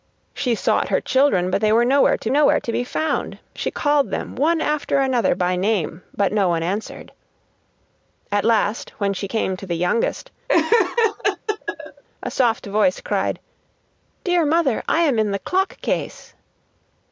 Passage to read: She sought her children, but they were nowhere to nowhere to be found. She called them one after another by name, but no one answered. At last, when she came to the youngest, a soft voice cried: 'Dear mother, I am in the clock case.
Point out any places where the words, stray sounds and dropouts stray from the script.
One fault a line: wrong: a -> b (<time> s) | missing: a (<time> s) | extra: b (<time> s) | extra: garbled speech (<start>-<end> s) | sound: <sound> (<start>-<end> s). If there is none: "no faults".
sound: laugh (10.5-12.0 s)